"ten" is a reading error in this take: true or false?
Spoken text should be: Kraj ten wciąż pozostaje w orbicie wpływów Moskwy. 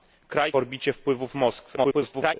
true